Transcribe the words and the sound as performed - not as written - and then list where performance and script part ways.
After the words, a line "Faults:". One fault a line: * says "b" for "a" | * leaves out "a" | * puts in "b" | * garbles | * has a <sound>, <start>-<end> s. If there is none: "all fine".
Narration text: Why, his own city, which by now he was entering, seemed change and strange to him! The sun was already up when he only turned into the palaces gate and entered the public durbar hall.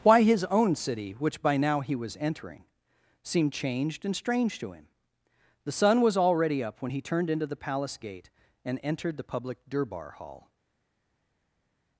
Why, his own city, which by now he was entering, seemed changed and strange to him! The sun was already up when he turned into the palace gate and entered the public durbar hall.
Faults:
* says "changed" for "change"
* leaves out "only"
* says "palace" for "palaces"